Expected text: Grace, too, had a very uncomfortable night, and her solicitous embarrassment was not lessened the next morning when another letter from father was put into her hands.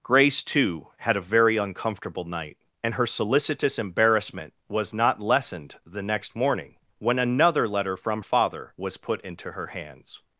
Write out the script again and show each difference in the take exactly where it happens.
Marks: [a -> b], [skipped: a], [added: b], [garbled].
Grace, too, had a very uncomfortable night, and her solicitous embarrassment was not lessened the next morning when another letter from father was put into her hands.